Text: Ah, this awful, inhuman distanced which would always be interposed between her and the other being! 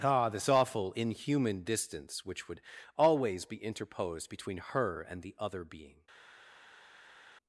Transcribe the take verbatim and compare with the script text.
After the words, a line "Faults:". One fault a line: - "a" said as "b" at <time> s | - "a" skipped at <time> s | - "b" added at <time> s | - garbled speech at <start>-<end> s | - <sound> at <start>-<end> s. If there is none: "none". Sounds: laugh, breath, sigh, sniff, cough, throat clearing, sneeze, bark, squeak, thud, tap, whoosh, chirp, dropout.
Ah, this awful, inhuman distance which would always be interposed between her and the other being!
Faults:
- "distanced" said as "distance" at 1.6 s